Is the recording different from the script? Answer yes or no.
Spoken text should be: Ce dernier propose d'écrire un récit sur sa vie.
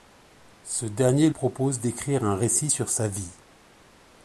no